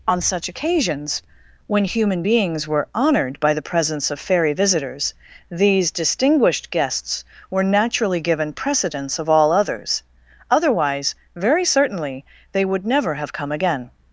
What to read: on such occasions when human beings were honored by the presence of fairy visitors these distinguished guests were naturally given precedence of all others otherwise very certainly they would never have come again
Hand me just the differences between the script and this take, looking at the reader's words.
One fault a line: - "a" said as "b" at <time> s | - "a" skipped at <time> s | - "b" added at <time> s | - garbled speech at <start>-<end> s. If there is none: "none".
none